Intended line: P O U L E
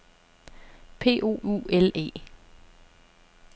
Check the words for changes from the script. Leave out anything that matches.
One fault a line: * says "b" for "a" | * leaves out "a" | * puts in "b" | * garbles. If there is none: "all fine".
all fine